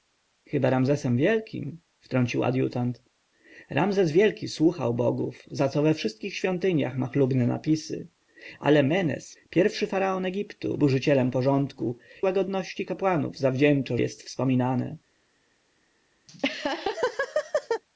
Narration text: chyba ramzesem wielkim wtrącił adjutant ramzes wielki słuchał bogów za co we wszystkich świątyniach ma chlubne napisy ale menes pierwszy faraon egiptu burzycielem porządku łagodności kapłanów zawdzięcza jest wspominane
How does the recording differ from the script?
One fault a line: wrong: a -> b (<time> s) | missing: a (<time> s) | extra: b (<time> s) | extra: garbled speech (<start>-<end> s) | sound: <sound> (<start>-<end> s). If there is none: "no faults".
sound: laugh (16.3-17.8 s)